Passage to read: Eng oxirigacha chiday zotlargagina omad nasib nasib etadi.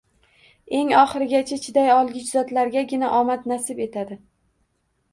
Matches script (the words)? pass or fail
fail